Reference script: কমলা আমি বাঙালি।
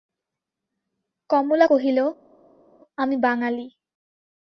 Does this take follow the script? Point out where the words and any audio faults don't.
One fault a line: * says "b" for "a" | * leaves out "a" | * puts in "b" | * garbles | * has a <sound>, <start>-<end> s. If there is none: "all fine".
* puts in "কহিল"